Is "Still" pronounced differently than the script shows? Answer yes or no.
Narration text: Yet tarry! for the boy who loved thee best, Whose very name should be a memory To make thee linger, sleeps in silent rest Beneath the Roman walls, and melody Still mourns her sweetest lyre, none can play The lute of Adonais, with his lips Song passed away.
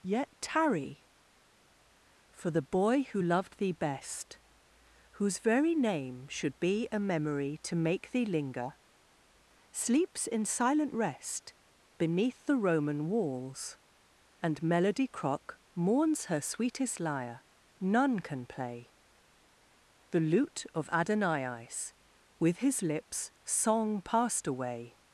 yes